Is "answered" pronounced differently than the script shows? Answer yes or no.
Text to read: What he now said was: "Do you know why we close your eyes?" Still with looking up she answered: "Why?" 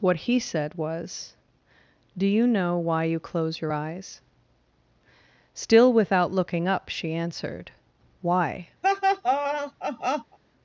no